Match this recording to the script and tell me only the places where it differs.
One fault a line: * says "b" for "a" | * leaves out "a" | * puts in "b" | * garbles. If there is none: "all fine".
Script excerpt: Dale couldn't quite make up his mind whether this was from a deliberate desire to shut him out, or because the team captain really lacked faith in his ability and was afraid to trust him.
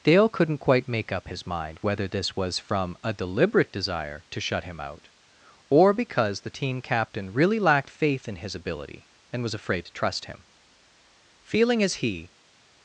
* puts in "Feeling as he"